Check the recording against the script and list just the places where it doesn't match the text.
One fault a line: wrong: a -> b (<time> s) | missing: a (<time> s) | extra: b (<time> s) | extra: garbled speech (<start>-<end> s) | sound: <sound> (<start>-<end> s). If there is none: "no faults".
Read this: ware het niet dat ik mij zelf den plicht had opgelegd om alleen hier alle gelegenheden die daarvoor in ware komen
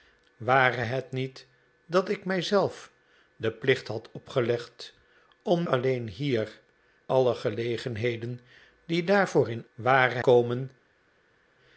no faults